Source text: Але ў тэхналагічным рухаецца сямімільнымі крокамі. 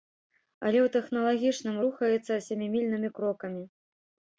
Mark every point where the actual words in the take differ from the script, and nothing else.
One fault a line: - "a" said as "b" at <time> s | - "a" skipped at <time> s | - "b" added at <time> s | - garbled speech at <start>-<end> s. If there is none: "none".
none